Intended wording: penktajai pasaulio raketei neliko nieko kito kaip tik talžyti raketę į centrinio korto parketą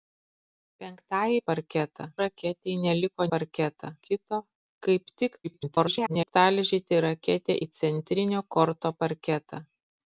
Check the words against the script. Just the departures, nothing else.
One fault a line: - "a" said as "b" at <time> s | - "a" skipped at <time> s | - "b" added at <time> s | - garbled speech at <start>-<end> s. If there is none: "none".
- "pasaulio" said as "parketą" at 1.5 s
- "nieko" said as "parketą" at 3.4 s
- garbled speech at 5.4-6.3 s